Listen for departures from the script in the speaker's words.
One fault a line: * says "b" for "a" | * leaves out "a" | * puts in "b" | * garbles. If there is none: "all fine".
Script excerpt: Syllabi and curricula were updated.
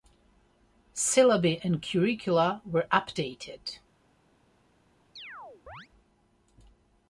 all fine